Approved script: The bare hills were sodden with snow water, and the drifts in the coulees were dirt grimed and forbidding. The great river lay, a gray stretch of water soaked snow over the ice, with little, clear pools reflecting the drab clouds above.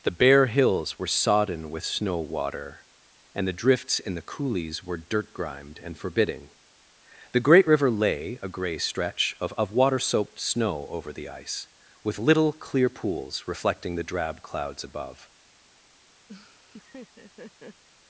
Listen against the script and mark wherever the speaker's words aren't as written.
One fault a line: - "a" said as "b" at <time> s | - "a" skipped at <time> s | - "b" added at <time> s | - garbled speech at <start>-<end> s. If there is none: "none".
- "of" added at 9.6 s